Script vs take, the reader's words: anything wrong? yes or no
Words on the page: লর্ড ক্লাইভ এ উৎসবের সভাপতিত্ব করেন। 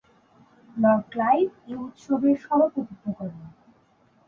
no